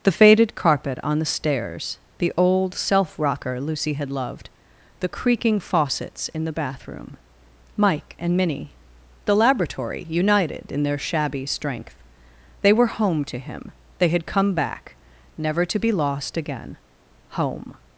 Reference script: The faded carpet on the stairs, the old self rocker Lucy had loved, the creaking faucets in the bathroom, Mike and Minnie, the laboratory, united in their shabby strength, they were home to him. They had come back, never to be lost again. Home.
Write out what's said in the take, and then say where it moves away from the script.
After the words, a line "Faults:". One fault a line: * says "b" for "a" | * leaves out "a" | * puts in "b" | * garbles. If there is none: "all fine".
The faded carpet on the stairs, the old self rocker Lucy had loved, the creaking faucets in the bathroom, Mike and Minnie, the laboratory, united in their shabby strength, they were home to him. They had come back, never to be lost again. Home.
Faults:
all fine